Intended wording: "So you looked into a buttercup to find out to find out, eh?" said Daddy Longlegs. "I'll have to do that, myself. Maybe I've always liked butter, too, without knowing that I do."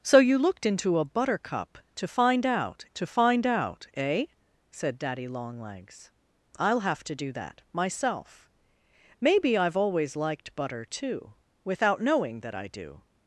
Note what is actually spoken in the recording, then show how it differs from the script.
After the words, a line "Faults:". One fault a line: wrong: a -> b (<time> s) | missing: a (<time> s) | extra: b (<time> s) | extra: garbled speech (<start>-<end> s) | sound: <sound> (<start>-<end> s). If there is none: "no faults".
"So you looked into a buttercup to find out to find out, eh?" said Daddy Longlegs. "I'll have to do that, myself. Maybe I've always liked butter, too, without knowing that I do."
Faults:
no faults